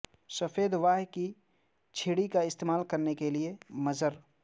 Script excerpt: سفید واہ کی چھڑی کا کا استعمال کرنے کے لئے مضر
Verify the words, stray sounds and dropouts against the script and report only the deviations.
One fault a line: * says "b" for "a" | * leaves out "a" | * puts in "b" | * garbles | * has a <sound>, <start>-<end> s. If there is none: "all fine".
* leaves out "کا"